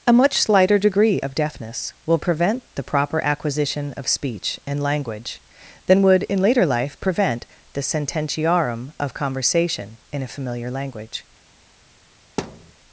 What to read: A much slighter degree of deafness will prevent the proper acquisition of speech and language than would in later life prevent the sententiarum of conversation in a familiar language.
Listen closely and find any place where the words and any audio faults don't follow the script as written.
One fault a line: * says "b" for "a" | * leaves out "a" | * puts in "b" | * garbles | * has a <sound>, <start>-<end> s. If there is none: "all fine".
* has a thud, 12.4-12.7 s